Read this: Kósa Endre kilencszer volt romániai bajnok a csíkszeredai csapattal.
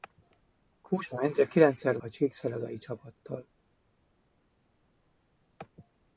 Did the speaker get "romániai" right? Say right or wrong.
wrong